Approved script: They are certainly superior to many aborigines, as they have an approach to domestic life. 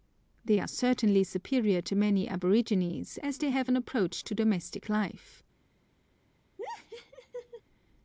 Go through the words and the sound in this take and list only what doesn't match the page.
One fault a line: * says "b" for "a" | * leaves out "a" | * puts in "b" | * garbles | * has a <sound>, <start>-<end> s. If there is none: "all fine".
* has a laugh, 6.6-7.6 s